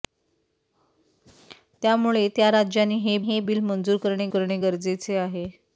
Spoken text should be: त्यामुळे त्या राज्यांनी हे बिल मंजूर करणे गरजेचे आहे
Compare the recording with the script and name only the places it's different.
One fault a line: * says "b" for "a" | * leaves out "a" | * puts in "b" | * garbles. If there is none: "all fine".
* puts in "हे"
* puts in "करणे"